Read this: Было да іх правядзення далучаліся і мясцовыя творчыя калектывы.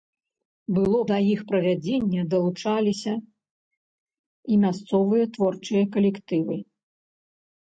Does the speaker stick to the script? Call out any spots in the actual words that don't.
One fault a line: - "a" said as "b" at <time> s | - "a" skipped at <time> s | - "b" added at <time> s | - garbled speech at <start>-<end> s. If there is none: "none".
none